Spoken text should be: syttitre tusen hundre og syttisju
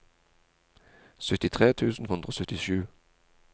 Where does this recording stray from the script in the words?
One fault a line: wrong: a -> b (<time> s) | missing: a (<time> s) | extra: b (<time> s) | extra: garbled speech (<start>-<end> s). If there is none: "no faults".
no faults